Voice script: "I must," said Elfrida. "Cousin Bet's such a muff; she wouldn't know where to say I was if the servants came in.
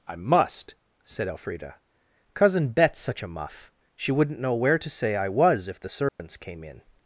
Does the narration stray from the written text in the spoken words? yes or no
no